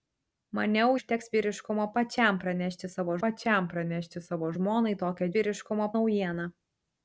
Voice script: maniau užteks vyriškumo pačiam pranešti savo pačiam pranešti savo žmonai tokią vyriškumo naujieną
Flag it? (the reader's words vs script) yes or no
no